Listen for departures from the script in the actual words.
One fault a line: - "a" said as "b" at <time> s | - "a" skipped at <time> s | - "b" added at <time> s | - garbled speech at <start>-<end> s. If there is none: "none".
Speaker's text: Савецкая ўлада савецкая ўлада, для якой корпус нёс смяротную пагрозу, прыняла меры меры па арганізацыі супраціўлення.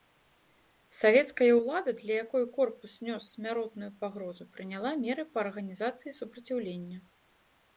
- "савецкая ўлада" skipped at 1.9 s
- "меры" skipped at 5.2 s